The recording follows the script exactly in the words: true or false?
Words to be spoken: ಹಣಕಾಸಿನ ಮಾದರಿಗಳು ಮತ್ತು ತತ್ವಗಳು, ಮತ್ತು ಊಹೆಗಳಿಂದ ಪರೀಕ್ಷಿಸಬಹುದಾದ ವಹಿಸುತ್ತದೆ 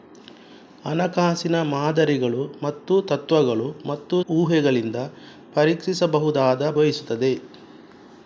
true